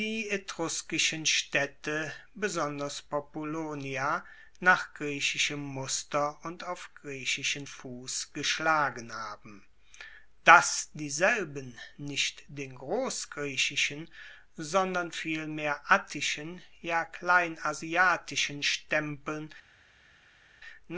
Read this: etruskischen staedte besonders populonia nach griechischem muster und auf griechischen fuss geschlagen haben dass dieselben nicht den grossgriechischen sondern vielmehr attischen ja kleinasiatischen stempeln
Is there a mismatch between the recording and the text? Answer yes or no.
no